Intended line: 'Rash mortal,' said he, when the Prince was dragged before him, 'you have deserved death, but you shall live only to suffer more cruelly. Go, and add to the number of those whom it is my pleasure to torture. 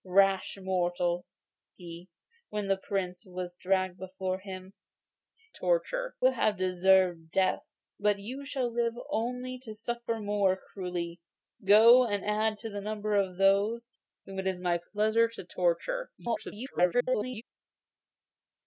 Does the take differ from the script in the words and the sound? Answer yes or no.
yes